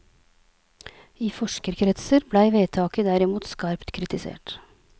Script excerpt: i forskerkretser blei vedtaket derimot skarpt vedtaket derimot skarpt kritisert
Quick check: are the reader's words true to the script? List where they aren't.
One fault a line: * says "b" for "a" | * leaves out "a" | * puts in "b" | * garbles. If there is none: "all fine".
* leaves out "vedtaket derimot skarpt"